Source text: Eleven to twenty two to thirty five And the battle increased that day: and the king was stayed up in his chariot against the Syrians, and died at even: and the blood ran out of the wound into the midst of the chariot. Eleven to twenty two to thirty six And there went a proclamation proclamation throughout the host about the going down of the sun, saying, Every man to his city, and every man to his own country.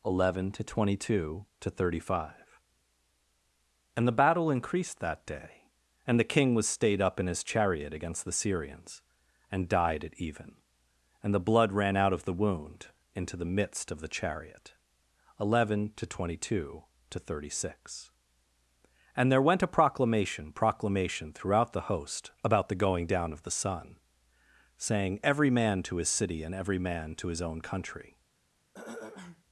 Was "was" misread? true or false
false